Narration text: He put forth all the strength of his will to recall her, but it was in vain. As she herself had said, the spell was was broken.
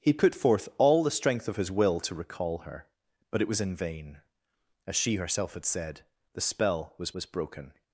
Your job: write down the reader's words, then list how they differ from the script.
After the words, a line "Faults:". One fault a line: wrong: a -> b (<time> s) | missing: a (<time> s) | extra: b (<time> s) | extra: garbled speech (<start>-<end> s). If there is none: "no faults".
He put forth all the strength of his will to recall her, but it was in vain. As she herself had said, the spell was was broken.
Faults:
no faults